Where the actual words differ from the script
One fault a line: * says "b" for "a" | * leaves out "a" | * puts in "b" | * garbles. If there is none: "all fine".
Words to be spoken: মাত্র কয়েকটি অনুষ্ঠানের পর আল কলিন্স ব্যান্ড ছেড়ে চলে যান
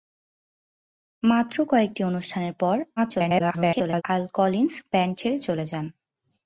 * garbles